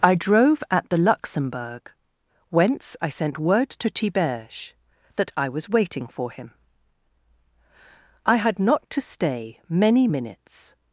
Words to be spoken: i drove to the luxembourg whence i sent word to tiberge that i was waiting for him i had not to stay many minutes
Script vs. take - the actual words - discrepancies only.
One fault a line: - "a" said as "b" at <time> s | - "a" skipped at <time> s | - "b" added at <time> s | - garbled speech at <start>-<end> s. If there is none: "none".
- "to" said as "at" at 0.7 s